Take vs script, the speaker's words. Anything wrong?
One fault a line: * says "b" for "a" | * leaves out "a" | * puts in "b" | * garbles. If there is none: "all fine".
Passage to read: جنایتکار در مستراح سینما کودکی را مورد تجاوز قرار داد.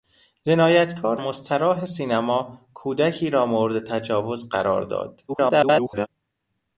* leaves out "در"
* garbles